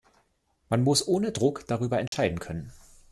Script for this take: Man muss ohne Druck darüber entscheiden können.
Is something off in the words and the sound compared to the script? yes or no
yes